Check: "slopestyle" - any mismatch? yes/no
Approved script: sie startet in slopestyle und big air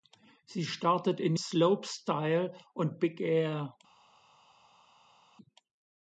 no